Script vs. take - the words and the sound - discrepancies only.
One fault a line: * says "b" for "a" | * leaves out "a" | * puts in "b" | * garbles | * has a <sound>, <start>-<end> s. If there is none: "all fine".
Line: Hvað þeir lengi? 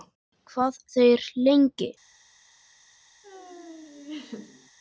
* has a laugh, 3.2-4.7 s